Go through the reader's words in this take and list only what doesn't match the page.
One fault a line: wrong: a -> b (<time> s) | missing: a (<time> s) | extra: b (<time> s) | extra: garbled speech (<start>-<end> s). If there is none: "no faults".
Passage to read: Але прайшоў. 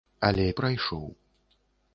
no faults